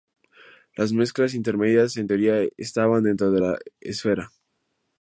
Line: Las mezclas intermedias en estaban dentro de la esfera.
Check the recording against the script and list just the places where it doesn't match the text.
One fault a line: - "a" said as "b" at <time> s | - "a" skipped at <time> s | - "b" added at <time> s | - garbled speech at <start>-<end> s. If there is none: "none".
- "teoría" added at 2.0 s